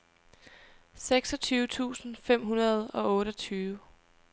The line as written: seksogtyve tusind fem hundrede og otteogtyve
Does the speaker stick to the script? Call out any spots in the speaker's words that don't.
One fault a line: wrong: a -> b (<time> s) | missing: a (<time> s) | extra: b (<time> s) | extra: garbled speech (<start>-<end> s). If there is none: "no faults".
no faults